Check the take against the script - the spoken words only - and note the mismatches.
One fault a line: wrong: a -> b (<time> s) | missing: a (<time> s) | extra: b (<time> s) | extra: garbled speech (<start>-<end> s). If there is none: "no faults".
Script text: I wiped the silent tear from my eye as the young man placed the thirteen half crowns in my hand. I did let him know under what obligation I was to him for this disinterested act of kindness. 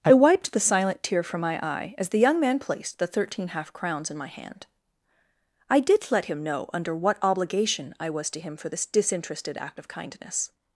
no faults